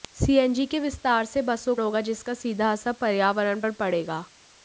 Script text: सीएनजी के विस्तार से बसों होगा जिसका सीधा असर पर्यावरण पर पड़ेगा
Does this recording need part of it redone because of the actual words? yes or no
no